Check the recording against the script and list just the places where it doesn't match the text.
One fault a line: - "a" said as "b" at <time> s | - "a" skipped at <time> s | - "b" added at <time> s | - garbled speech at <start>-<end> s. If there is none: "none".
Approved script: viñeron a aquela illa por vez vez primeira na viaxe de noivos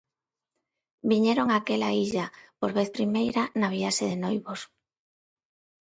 - "vez" skipped at 2.9 s